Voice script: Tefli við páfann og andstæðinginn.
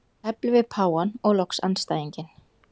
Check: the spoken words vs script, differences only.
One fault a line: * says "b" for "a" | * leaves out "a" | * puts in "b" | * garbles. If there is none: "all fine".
* puts in "loks"